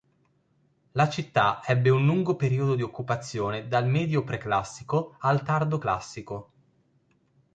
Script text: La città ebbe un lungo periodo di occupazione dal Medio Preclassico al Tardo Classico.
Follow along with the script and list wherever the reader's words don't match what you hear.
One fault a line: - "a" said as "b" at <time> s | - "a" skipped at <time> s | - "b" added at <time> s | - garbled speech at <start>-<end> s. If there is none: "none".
none